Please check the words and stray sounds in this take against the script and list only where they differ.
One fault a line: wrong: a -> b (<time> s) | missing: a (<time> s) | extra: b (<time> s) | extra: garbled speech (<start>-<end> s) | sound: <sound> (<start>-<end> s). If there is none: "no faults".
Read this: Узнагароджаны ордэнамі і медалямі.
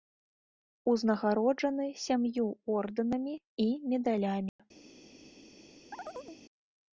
extra: сям'ю (2.0 s)
sound: dropout (4.5-4.6 s)
sound: chirp (5.9-6.4 s)